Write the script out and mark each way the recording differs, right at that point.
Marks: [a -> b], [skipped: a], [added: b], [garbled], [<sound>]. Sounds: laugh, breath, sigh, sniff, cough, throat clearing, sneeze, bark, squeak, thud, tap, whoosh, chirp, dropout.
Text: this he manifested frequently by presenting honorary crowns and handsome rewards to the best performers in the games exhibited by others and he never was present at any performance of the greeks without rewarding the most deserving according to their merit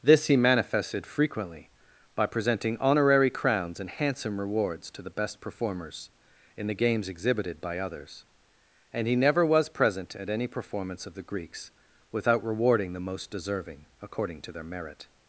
this he manifested frequently by presenting honorary crowns and handsome rewards to the best performers in the games exhibited by others and he never was present at any performance of the greeks without rewarding the most deserving according to their merit